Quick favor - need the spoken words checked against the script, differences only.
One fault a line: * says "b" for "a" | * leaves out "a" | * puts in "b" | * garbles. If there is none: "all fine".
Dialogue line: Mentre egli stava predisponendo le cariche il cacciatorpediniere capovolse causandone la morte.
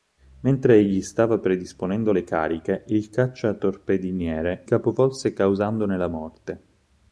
all fine